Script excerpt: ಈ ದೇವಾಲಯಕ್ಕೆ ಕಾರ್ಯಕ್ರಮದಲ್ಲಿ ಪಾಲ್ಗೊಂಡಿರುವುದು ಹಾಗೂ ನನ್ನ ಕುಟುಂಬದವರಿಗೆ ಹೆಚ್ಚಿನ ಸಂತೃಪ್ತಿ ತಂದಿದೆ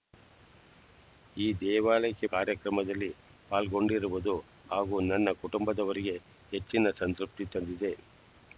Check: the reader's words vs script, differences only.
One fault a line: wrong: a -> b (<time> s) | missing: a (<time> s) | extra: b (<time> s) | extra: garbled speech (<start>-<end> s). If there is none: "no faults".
no faults